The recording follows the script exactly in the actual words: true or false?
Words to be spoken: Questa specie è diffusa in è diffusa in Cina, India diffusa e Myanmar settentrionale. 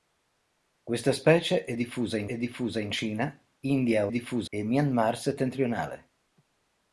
true